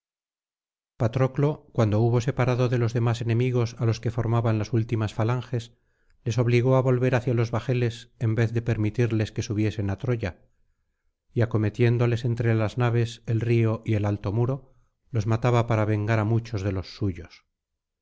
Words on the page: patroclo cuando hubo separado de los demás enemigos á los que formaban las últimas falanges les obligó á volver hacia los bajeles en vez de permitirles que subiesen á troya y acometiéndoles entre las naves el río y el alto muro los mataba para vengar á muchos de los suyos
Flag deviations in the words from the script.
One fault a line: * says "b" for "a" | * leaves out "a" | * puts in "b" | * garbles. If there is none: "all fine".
all fine